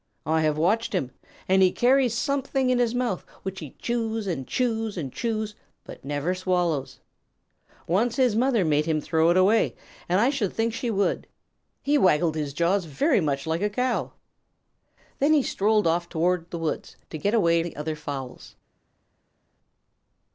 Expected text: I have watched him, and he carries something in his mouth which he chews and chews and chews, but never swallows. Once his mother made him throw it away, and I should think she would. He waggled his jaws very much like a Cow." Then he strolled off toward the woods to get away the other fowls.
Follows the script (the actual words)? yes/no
yes